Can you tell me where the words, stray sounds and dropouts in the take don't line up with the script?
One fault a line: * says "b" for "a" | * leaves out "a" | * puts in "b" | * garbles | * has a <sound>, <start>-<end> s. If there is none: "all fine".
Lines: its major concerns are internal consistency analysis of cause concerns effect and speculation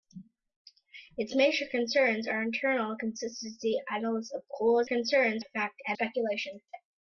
all fine